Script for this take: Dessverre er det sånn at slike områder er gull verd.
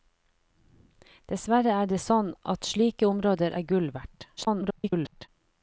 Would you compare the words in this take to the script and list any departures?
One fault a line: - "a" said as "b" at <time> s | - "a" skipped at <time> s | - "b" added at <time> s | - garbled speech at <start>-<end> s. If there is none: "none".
- garbled speech at 4.4-5.3 s